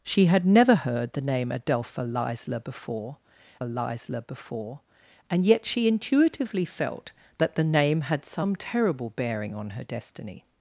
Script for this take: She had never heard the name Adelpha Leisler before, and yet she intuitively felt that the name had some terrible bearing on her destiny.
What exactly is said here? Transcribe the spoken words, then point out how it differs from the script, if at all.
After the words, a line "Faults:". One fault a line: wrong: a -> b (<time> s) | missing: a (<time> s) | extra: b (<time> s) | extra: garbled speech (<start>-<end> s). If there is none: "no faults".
She had never heard the name Adelpha Leisler before Leisler before, and yet she intuitively felt that the name had some terrible bearing on her destiny.
Faults:
extra: Leisler before (3.6 s)